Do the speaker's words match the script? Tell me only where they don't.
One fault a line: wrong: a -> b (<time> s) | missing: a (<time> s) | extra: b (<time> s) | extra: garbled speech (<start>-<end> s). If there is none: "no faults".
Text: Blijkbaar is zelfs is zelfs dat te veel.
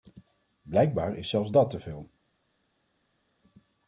missing: is zelfs (1.5 s)